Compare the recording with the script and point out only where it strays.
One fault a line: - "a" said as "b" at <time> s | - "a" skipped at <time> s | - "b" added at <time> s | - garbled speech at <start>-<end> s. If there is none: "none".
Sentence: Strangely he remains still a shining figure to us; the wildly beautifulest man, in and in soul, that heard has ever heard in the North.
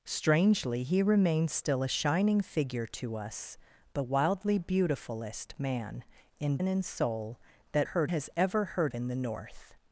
none